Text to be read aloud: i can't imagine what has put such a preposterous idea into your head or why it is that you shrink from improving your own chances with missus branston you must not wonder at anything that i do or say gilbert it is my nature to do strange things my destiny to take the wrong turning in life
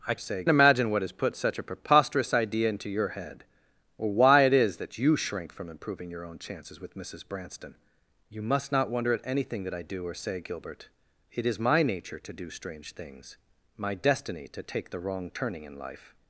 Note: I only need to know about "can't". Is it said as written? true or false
false